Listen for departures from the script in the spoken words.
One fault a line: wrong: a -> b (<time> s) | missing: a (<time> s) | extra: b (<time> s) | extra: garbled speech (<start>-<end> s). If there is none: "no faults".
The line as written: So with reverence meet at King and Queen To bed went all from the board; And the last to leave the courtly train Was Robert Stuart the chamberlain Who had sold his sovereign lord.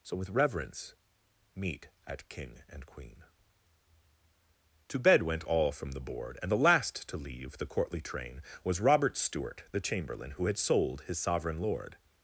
no faults